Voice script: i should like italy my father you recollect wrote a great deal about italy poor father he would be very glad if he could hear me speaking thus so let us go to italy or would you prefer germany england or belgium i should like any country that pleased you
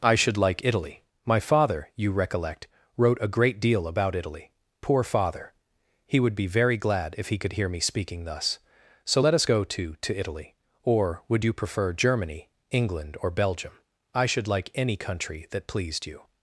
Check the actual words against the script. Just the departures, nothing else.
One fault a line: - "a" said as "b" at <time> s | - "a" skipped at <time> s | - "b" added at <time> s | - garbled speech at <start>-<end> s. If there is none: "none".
- "to" added at 10.0 s